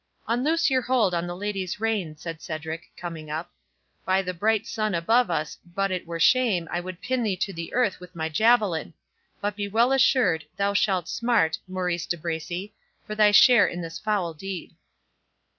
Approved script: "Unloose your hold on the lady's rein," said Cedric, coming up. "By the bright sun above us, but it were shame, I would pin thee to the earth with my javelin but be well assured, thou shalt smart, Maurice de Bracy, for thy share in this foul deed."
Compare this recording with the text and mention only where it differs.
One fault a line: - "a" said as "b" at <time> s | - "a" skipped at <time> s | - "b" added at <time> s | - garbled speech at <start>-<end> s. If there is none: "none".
none